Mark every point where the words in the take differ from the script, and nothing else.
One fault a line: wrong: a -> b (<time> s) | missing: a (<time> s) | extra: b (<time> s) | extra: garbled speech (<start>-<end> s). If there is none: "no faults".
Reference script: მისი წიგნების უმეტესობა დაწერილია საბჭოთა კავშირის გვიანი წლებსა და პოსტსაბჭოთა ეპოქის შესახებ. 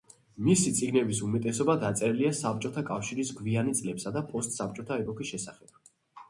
no faults